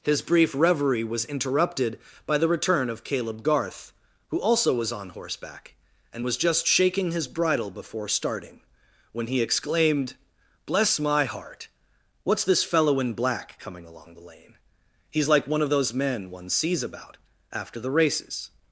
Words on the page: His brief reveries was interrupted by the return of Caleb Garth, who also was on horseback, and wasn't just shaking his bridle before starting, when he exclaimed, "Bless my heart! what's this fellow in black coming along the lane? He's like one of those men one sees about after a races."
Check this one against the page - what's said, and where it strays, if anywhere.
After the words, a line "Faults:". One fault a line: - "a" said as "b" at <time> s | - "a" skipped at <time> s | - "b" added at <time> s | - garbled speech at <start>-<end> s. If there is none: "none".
His brief reverie was interrupted by the return of Caleb Garth, who also was on horseback, and was just shaking his bridle before starting, when he exclaimed, "Bless my heart! what's this fellow in black coming along the lane? He's like one of those men one sees about after the races."
Faults:
- "reveries" said as "reverie" at 0.6 s
- "wasn't" said as "was" at 6.2 s
- "a" said as "the" at 17.8 s